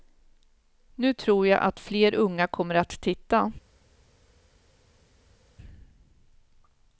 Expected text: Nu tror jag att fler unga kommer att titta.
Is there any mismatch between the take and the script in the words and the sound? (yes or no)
no